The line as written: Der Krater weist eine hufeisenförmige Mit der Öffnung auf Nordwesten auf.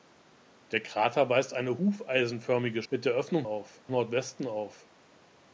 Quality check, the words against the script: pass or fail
pass